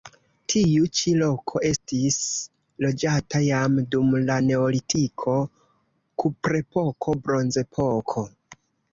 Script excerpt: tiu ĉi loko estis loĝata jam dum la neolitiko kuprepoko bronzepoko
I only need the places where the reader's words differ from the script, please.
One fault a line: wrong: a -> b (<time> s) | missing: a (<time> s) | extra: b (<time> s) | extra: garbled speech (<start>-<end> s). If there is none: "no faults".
no faults